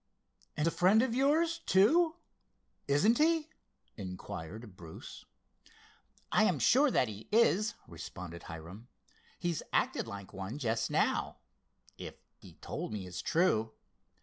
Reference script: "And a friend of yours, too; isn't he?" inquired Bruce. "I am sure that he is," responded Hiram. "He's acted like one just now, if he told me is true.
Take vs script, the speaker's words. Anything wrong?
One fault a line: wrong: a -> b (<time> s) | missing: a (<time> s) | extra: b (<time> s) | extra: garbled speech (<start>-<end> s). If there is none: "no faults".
no faults